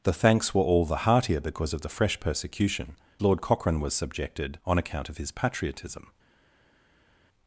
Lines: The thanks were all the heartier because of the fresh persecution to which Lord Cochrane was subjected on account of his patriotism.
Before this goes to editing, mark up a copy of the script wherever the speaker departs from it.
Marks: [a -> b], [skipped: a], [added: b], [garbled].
The thanks were all the heartier because of the fresh persecution [skipped: to which] Lord Cochrane was subjected on account of his patriotism.